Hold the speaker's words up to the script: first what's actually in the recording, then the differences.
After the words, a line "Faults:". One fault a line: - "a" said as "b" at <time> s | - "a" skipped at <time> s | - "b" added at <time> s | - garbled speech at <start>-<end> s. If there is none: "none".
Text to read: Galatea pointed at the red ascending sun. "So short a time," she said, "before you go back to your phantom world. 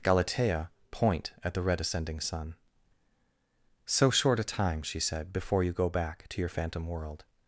Galatea point at the red ascending sun. "So short a time," she said, "before you go back to your phantom world.
Faults:
- "pointed" said as "point" at 0.9 s